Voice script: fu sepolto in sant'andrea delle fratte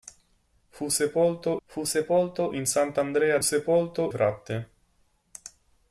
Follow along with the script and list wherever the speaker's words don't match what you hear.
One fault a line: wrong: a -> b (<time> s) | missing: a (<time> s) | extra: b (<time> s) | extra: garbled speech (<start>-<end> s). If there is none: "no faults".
extra: fu sepolto (1.7 s)
wrong: delle -> sepolto (3.4 s)